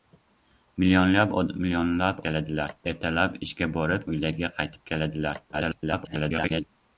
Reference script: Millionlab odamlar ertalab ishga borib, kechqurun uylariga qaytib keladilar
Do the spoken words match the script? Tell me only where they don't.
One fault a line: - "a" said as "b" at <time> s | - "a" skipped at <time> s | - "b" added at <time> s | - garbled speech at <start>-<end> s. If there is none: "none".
- "odamlar" said as "keladilar" at 2.3 s
- "kechqurun" skipped at 4.1 s
- garbled speech at 5.5-6.6 s